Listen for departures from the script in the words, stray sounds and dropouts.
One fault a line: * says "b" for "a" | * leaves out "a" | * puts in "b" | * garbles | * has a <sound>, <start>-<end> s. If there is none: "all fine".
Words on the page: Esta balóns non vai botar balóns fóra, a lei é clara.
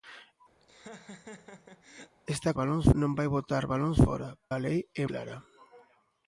* has a laugh, 0.6-2.2 s